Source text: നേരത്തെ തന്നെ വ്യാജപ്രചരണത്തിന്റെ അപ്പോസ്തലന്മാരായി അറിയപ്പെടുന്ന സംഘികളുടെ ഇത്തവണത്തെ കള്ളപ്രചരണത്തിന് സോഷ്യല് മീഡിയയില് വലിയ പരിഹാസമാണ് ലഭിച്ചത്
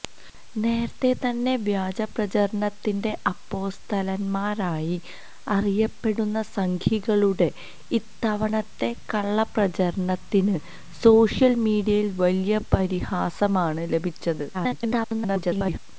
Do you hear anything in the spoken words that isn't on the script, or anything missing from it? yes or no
yes